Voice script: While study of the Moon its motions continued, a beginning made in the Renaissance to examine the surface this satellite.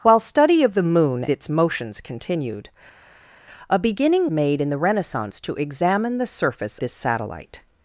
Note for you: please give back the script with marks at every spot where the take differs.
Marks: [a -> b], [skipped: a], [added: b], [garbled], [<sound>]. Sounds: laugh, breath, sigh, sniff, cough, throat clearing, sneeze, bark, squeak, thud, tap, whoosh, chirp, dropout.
While study of the Moon its motions continued, a beginning made in the Renaissance to examine the surface this satellite.